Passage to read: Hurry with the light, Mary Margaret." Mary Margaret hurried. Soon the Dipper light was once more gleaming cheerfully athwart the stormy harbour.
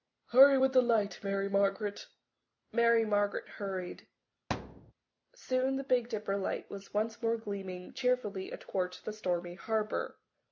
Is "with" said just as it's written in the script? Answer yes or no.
yes